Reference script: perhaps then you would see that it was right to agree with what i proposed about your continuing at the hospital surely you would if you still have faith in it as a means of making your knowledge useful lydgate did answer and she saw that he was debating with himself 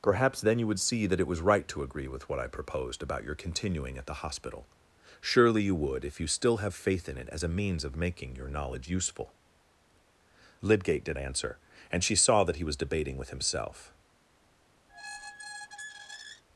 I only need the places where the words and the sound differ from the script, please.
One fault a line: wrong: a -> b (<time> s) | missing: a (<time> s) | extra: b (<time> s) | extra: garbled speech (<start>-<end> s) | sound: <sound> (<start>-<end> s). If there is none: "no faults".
sound: squeak (14.9-16.4 s)